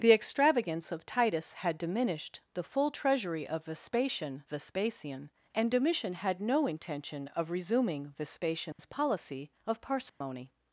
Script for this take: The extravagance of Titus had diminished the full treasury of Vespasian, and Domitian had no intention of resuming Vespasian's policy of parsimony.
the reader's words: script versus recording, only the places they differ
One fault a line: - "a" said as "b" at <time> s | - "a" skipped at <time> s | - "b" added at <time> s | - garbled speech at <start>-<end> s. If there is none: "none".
- "Vespasian" added at 4.5 s